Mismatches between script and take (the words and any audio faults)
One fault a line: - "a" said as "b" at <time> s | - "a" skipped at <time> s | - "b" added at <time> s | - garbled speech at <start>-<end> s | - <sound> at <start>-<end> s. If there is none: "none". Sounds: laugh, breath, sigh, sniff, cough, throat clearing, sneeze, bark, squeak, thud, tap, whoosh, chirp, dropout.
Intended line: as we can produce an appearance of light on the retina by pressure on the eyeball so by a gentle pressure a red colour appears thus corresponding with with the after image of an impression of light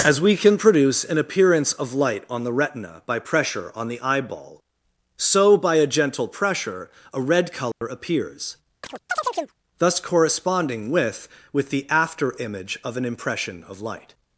- dropout at 7.7-7.8 s
- chirp at 8.8-9.6 s